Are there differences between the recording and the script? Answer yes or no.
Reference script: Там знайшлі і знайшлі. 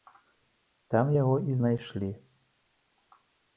yes